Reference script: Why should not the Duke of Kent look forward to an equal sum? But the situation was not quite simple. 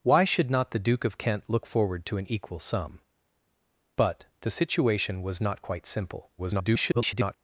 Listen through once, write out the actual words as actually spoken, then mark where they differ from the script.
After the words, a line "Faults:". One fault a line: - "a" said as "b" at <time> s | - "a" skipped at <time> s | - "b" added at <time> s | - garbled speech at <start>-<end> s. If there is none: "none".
Why should not the Duke of Kent look forward to an equal sum? But the situation was not quite simple. [garbled]
Faults:
- garbled speech at 6.4-7.3 s